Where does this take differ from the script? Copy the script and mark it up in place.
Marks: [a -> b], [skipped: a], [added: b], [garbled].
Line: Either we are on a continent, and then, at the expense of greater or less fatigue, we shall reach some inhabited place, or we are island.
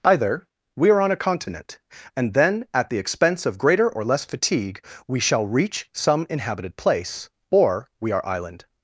Either we are on a continent, and then, at the expense of greater or less fatigue, we shall reach some inhabited place, or we are island.